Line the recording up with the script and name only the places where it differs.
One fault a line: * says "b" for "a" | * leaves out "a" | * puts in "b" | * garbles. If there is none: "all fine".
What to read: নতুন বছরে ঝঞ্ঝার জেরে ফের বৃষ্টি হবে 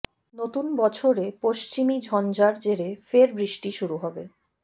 * puts in "পশ্চিমী"
* puts in "শুরু"